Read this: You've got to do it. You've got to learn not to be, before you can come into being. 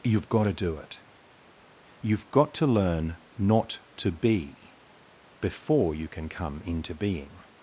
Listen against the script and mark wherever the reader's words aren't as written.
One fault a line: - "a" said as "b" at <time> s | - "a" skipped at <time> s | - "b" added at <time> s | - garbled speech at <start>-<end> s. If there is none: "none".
none